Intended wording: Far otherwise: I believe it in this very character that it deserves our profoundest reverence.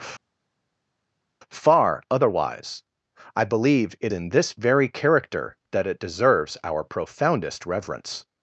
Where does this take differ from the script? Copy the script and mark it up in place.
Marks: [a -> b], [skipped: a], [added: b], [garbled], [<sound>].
Far otherwise: I believe it in this very character that it deserves our profoundest reverence.